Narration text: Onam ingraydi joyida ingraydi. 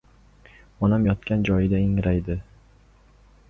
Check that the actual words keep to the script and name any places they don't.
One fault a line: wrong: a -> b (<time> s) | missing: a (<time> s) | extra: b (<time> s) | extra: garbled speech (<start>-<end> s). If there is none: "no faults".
wrong: ingraydi -> yotgan (1.1 s)